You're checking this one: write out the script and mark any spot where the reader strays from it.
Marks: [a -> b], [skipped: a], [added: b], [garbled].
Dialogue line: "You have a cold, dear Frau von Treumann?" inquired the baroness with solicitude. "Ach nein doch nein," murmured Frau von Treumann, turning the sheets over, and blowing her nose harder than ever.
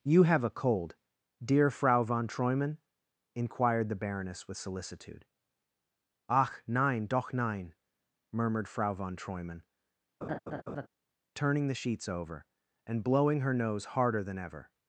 "You have a cold, dear Frau von Treumann?" inquired the baroness with solicitude. "Ach nein doch nein," murmured Frau von Treumann, turning the sheets over, and blowing her nose harder than ever.